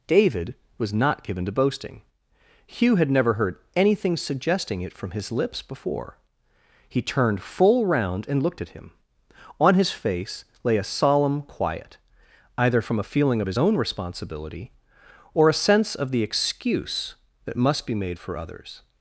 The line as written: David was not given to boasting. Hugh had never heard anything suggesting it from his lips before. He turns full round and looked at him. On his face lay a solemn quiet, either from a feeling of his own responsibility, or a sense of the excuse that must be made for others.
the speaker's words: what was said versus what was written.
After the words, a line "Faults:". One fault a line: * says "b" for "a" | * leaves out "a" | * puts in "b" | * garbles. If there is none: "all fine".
David was not given to boasting. Hugh had never heard anything suggesting it from his lips before. He turned full round and looked at him. On his face lay a solemn quiet, either from a feeling of his own responsibility, or a sense of the excuse that must be made for others.
Faults:
* says "turned" for "turns"